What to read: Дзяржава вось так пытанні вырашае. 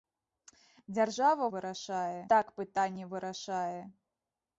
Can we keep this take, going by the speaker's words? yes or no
no